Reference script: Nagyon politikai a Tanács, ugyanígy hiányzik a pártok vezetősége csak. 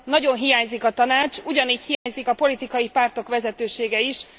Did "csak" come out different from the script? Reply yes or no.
yes